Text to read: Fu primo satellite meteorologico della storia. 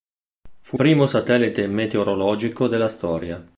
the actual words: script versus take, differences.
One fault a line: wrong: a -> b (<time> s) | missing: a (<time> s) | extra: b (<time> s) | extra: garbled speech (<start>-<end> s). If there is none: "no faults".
no faults